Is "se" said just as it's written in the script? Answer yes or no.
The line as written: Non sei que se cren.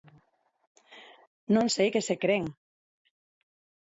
yes